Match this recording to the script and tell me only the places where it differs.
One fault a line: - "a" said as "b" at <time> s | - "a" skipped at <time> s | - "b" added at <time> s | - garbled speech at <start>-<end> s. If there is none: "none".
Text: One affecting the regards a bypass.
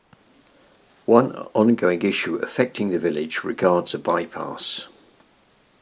- "ongoing issue" added at 1.5 s
- "village" added at 3.0 s